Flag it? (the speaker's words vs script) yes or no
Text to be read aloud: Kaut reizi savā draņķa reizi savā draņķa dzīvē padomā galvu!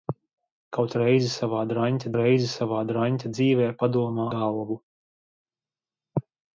no